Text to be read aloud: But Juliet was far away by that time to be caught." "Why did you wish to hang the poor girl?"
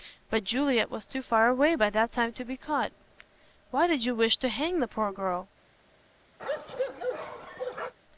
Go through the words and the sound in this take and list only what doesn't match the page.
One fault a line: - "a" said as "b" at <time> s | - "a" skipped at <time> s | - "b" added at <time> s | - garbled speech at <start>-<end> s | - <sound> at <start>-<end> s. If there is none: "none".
- "too" added at 1.1 s
- bark at 6.4-7.9 s